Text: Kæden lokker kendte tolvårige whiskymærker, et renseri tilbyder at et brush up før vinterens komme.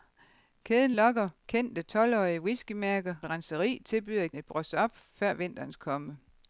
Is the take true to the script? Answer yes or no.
yes